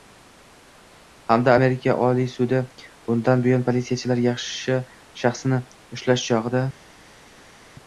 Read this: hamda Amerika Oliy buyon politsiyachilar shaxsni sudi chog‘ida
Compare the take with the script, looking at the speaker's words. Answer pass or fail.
fail